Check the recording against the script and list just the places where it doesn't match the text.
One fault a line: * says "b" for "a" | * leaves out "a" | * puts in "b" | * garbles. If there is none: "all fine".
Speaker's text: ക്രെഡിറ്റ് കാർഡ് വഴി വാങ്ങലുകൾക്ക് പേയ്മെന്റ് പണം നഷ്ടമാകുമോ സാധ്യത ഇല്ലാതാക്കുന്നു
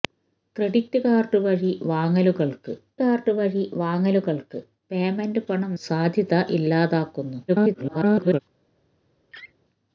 * puts in "കാർഡ് വഴി വാങ്ങലുകൾക്ക്"
* leaves out "നഷ്ടമാകുമോ"
* garbles